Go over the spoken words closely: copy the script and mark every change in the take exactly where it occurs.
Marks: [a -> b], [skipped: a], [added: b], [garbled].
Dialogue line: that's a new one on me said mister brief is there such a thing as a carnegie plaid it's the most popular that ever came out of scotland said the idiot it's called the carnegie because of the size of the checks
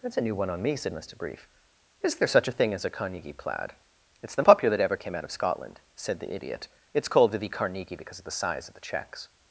that's a new one on me said mister brief is there such a thing as a carnegie plaid it's the [skipped: most] popular that ever came out of scotland said the idiot it's called the carnegie because of the size of the checks